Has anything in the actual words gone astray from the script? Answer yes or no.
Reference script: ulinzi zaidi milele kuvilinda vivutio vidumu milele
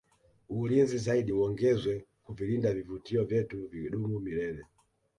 yes